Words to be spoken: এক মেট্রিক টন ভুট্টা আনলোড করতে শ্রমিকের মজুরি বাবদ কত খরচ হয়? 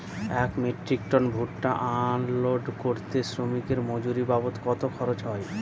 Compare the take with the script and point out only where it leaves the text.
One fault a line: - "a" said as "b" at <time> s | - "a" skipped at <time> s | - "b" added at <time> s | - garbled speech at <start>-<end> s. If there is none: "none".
none